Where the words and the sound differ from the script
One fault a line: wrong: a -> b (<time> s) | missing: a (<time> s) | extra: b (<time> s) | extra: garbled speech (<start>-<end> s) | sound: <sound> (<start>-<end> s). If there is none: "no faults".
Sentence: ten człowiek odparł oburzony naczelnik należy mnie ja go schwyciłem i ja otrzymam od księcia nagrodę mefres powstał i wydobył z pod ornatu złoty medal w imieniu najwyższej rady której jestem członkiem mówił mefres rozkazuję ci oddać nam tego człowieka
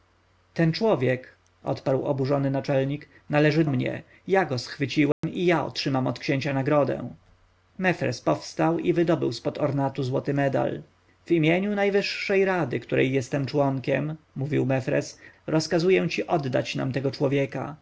sound: dropout (5.1-5.2 s)